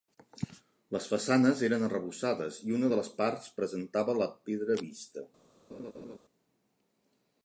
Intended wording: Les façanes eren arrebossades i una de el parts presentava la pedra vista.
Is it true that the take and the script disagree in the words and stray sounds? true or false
true